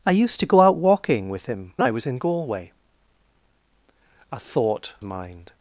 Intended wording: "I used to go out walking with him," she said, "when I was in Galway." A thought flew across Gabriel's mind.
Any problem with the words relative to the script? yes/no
yes